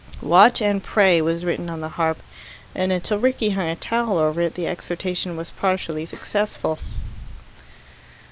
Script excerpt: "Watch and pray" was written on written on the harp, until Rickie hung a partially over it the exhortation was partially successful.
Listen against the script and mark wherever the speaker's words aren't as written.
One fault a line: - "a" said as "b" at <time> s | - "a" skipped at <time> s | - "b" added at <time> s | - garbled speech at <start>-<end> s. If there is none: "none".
- "written on" skipped at 1.8 s
- "and" added at 2.7 s
- "partially" said as "towel" at 3.8 s